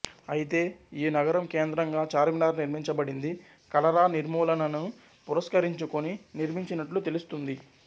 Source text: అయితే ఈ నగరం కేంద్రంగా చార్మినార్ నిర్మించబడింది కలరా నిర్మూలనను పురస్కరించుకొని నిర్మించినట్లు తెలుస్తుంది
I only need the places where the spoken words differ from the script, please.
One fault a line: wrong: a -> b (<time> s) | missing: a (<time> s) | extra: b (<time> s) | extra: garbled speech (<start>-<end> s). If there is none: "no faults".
no faults